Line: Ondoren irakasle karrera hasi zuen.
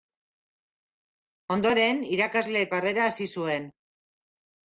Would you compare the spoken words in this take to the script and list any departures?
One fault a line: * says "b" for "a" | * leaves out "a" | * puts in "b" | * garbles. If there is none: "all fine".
all fine